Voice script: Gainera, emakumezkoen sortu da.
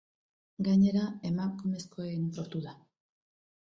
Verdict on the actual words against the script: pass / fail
pass